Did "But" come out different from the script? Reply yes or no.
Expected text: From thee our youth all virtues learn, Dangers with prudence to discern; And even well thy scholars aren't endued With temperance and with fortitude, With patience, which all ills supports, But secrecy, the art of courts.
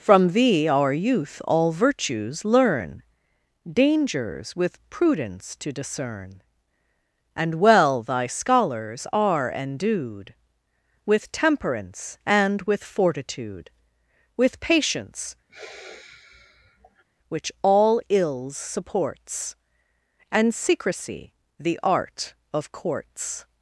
yes